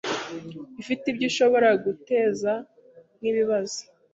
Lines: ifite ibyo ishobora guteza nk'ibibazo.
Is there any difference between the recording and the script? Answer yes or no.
no